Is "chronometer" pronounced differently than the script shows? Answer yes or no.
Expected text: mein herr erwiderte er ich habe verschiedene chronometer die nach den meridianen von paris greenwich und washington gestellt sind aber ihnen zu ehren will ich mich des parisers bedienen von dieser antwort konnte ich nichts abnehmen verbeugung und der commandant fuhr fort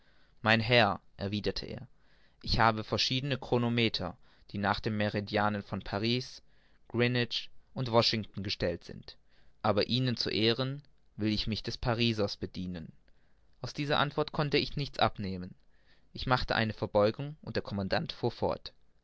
no